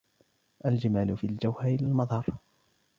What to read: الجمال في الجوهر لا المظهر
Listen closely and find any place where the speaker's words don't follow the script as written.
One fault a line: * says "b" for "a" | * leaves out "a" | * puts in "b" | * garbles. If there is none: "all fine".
all fine